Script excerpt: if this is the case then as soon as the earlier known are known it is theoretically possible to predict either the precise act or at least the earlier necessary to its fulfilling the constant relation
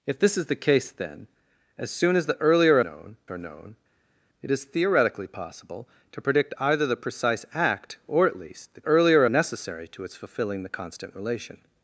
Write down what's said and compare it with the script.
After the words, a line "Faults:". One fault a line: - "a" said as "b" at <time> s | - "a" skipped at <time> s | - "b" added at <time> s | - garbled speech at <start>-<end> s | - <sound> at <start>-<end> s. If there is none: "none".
if this is the case then as soon as the earlier known are known it is theoretically possible to predict either the precise act or at least the earlier necessary to its fulfilling the constant relation
Faults:
none